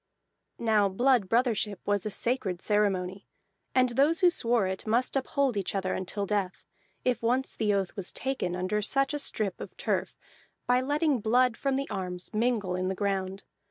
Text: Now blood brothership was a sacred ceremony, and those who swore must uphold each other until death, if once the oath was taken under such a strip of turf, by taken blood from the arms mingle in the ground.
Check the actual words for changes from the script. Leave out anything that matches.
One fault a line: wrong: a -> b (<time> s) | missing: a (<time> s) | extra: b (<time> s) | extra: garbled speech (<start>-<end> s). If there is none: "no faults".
extra: it (4.7 s)
wrong: taken -> letting (10.8 s)